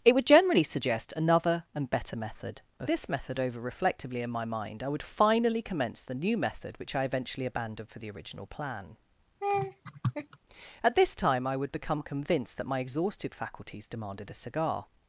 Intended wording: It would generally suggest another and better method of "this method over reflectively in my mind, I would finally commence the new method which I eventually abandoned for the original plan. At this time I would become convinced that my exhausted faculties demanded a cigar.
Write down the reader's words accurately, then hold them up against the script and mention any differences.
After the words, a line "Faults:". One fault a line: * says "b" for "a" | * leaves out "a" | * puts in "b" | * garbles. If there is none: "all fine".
It would generally suggest another and better method of "this method over reflectively in my mind, I would finally commence the new method which I eventually abandoned for the original plan. At this time I would become convinced that my exhausted faculties demanded a cigar.
Faults:
all fine